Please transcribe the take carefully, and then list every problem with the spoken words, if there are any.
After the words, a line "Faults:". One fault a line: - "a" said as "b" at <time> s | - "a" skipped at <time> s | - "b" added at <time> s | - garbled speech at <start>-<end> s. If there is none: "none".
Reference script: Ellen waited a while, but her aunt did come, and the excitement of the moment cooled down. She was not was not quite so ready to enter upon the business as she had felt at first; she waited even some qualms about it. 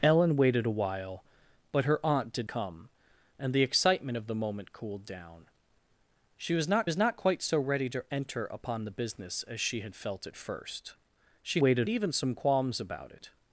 Ellen waited a while, but her aunt did come, and the excitement of the moment cooled down. She was not was not quite so ready to enter upon the business as she had felt at first; she waited even some qualms about it.
Faults:
none